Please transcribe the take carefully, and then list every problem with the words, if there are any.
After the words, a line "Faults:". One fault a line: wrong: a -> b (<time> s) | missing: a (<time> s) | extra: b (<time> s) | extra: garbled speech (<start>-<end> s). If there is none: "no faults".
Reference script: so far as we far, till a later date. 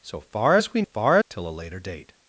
so far as we far, till a later date.
Faults:
no faults